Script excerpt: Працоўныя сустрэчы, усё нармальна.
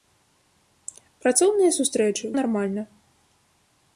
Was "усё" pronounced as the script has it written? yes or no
no